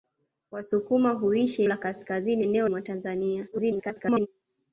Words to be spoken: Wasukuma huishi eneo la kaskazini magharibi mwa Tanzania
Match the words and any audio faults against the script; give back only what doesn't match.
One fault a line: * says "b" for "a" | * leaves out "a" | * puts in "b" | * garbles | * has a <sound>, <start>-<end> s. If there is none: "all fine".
* leaves out "eneo"
* says "eneo" for "magharibi"
* garbles